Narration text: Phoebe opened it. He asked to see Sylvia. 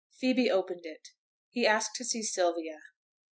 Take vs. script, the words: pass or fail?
pass